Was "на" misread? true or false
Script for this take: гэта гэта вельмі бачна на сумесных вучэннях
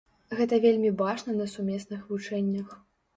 false